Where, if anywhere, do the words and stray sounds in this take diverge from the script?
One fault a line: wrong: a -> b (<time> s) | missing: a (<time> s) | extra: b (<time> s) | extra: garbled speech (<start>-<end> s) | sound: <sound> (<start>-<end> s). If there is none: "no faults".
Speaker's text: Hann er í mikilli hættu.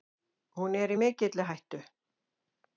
wrong: Hann -> Hún (0.6 s)